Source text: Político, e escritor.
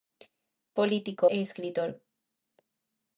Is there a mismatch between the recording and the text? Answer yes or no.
no